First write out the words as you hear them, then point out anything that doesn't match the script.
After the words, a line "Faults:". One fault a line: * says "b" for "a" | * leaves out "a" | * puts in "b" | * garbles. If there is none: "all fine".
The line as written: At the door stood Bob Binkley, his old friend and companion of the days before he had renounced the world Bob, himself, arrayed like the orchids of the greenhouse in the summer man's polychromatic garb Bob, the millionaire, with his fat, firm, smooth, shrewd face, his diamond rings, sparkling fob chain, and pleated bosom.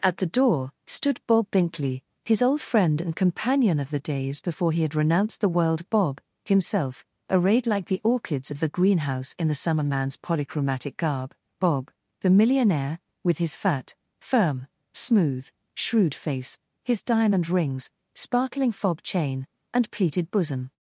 At the door stood Bob Binkley, his old friend and companion of the days before he had renounced the world Bob, himself, arrayed like the orchids of the greenhouse in the summer man's polychromatic garb Bob, the millionaire, with his fat, firm, smooth, shrewd face, his diamond rings, sparkling fob chain, and pleated bosom.
Faults:
all fine